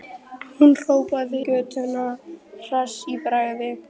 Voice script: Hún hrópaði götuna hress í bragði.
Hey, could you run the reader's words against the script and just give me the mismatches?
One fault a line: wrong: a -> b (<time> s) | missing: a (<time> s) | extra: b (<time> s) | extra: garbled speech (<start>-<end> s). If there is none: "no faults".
no faults